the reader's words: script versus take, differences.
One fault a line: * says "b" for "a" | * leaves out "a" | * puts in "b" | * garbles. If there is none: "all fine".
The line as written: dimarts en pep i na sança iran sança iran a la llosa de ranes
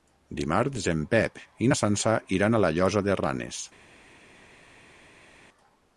* leaves out "sança iran"